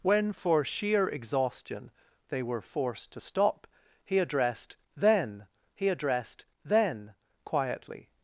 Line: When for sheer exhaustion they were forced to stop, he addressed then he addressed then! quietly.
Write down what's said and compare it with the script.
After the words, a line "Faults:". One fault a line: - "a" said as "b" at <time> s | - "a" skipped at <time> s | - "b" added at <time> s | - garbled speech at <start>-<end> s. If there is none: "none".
When for sheer exhaustion they were forced to stop, he addressed then he addressed then! quietly.
Faults:
none